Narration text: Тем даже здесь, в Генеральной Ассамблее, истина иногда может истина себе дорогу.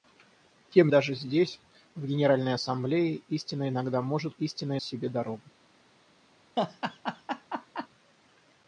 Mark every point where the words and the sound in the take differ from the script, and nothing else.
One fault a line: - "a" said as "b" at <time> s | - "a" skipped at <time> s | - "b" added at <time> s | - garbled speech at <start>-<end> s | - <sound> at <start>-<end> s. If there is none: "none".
- laugh at 6.6-7.9 s